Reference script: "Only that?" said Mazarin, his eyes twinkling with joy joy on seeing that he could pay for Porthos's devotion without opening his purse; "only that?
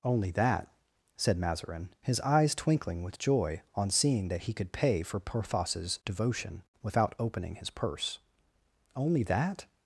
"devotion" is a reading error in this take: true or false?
false